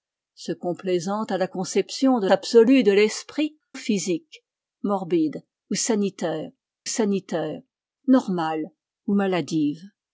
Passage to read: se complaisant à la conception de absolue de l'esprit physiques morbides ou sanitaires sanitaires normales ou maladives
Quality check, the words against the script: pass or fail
pass